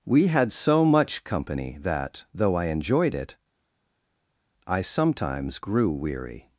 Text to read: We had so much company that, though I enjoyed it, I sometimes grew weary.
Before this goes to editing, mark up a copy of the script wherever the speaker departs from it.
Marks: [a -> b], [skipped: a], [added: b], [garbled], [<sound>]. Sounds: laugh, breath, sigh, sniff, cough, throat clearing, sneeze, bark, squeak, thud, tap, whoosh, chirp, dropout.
We had so much company that, though I enjoyed it, I sometimes grew weary.